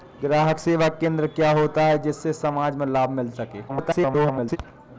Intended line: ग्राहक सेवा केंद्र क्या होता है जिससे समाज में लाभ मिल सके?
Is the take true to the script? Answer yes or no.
no